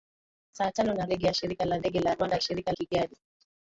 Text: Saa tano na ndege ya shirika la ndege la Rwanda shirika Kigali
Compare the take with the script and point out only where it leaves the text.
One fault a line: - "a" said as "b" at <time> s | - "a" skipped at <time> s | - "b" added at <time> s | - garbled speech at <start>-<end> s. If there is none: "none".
none